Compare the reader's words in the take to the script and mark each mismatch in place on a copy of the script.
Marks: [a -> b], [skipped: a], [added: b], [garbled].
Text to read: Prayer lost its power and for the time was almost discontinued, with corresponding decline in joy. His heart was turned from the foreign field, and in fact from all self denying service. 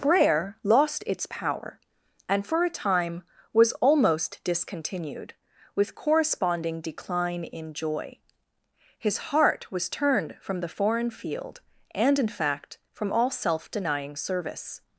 Prayer lost its power and for [the -> a] time was almost discontinued, with corresponding decline in joy. His heart was turned from the foreign field, and in fact from all self denying service.